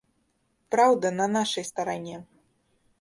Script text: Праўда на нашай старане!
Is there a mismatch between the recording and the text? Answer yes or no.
no